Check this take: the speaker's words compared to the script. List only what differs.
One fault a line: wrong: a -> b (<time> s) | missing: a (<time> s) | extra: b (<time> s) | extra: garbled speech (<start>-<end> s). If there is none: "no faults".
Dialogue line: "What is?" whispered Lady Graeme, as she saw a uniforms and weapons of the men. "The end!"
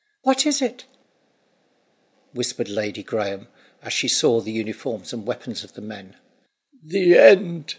extra: it (0.6 s)
wrong: a -> the (4.4 s)